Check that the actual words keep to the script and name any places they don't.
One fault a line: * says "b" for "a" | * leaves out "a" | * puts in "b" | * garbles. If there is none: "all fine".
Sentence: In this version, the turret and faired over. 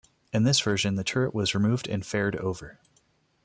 * puts in "was removed"